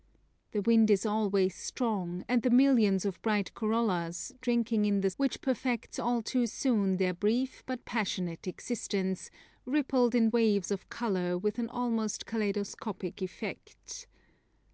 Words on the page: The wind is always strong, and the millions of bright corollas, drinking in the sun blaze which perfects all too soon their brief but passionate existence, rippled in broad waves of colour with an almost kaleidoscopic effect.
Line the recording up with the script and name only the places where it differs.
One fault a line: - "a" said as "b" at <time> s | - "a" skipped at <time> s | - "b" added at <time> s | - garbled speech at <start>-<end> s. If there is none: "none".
- "sun blaze" skipped at 5.1 s
- "broad" skipped at 10.3 s